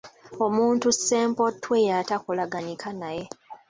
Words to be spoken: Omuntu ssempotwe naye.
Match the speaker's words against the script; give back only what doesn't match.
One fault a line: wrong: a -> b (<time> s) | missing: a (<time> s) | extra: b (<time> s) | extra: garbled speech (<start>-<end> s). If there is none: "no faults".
extra: y'atakolaganika (1.9 s)